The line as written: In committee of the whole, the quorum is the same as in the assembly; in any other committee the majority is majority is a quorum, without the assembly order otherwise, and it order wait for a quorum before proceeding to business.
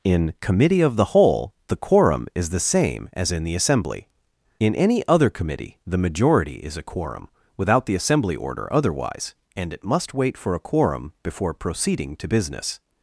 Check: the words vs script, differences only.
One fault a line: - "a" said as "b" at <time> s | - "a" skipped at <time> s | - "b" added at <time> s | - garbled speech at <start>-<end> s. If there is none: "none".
- "majority is" skipped at 6.8 s
- "order" said as "must" at 9.8 s